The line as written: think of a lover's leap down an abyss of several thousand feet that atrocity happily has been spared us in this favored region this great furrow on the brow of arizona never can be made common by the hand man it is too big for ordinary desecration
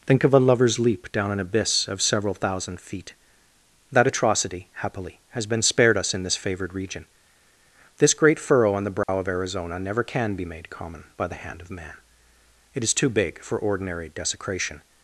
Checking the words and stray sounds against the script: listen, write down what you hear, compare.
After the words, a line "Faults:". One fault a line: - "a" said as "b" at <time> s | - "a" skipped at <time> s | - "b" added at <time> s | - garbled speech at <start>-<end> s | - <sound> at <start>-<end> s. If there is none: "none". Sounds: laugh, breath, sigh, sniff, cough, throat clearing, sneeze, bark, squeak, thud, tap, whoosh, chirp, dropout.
think of a lover's leap down an abyss of several thousand feet that atrocity happily has been spared us in this favored region this great furrow on the brow of arizona never can be made common by the hand of man it is too big for ordinary desecration
Faults:
- dropout at 9.0-9.1 s
- "of" added at 11.6 s